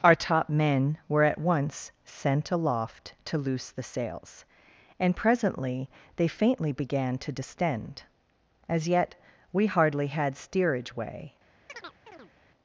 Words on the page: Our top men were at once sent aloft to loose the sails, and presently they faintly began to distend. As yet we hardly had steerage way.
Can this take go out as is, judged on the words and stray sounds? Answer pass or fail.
fail